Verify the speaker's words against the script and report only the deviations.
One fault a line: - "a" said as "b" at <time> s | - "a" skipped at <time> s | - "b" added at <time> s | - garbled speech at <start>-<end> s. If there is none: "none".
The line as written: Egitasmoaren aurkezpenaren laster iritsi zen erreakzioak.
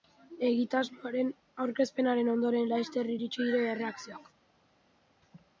- "ondoren" added at 2.4 s
- "zen" said as "dira" at 3.5 s